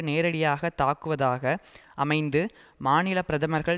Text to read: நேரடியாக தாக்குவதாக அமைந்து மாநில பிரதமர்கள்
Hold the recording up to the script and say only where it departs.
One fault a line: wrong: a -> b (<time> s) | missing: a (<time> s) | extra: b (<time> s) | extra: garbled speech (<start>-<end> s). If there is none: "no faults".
no faults